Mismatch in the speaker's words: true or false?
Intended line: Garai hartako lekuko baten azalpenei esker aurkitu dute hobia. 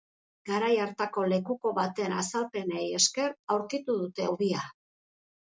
false